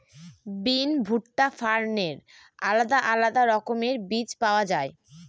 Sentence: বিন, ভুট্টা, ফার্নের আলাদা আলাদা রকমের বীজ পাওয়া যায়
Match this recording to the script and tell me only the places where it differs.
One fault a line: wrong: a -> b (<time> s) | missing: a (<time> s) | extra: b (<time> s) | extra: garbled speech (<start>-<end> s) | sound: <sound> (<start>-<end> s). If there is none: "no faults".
no faults